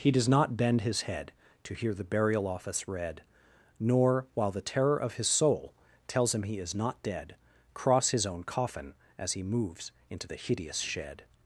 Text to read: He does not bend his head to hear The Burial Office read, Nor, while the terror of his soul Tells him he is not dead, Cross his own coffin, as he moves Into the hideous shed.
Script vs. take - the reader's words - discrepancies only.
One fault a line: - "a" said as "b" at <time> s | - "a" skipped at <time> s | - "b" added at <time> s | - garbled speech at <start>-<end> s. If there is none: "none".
none